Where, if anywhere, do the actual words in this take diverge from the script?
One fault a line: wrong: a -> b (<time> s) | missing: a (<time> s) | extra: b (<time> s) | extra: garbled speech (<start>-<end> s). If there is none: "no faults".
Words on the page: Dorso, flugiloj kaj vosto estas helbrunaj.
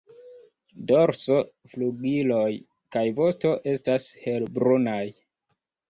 no faults